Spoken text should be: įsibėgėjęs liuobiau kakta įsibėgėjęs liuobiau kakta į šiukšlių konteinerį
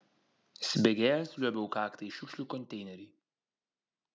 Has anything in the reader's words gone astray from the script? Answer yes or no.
yes